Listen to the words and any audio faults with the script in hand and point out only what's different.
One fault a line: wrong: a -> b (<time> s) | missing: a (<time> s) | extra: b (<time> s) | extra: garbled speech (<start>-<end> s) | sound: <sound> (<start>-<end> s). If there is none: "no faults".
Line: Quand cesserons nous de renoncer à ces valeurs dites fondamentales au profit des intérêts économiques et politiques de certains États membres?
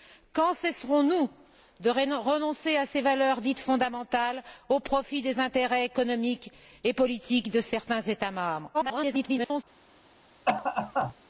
extra: garbled speech (8.7-9.6 s)
sound: cough (10.5-11.1 s)